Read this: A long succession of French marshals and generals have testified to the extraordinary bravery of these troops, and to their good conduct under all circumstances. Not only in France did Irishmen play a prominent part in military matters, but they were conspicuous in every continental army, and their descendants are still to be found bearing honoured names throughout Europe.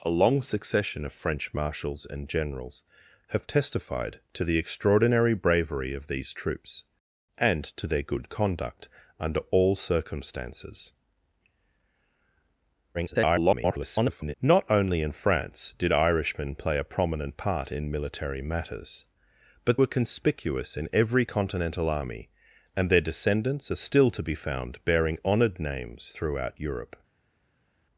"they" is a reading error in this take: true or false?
true